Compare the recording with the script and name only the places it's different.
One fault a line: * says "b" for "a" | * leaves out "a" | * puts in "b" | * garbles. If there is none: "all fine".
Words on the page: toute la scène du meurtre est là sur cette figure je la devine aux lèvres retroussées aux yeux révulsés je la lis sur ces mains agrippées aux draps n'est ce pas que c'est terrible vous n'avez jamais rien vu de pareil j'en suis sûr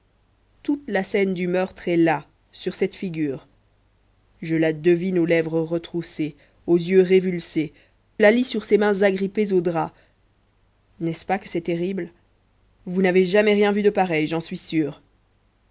* leaves out "je"